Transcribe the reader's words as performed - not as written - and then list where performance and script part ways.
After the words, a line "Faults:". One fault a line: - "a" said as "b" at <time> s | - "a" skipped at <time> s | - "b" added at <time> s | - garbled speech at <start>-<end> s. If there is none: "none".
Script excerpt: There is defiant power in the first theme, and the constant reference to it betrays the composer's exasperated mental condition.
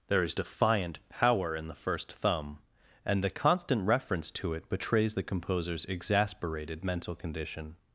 There is defiant power in the first thumb, and the constant reference to it betrays the composer's exasperated mental condition.
Faults:
- "theme" said as "thumb" at 2.1 s